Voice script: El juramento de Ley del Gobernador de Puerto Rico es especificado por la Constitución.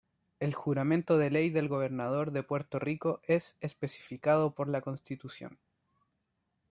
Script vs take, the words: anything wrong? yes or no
no